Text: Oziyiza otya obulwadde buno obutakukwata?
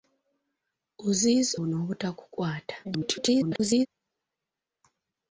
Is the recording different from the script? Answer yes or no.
yes